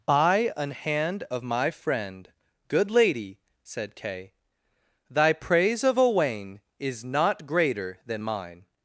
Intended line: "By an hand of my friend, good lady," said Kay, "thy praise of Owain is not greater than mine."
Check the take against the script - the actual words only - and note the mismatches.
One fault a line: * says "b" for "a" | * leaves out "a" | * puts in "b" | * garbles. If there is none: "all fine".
all fine